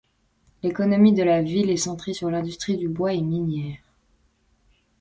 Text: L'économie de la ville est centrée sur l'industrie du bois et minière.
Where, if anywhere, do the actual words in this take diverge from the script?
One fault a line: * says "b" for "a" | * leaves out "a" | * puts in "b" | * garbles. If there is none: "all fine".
all fine